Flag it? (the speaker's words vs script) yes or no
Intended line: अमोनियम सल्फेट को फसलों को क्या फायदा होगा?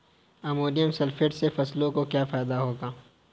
yes